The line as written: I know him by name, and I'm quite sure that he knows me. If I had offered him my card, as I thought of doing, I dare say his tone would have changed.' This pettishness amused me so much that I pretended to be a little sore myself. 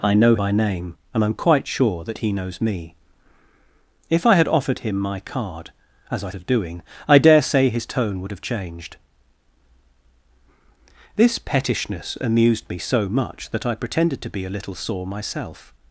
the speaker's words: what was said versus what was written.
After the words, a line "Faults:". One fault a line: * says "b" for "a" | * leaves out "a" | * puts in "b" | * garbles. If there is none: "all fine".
I know by name, and I'm quite sure that he knows me. If I had offered him my card, as I of doing, I dare say his tone would have changed.' This pettishness amused me so much that I pretended to be a little sore myself.
Faults:
* leaves out "him"
* leaves out "thought"